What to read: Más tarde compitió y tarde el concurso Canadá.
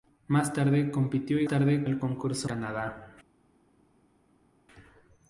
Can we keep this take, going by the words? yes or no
yes